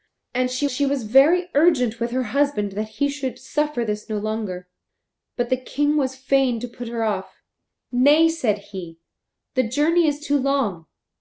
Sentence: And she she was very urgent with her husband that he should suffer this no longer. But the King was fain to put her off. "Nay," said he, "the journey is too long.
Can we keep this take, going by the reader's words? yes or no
yes